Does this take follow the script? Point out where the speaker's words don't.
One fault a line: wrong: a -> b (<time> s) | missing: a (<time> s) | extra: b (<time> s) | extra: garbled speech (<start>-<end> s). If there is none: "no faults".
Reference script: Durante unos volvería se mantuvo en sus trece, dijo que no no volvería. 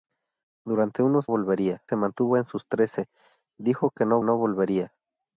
no faults